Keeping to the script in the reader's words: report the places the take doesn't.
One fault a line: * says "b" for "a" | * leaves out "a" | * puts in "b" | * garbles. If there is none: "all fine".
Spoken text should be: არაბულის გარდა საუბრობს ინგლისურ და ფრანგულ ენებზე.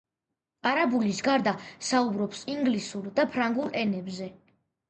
all fine